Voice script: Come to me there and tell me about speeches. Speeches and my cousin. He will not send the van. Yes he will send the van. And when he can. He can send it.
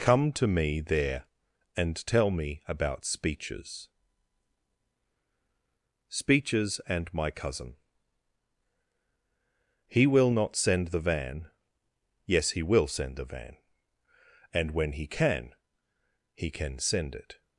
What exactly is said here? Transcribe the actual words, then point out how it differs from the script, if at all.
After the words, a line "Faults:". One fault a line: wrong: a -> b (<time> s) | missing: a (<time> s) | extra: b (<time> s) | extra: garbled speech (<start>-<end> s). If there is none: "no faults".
Come to me there and tell me about speeches. Speeches and my cousin. He will not send the van. Yes he will send the van. And when he can. He can send it.
Faults:
no faults